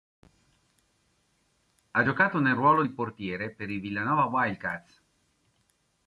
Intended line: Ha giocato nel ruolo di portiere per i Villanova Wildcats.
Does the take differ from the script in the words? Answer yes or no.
no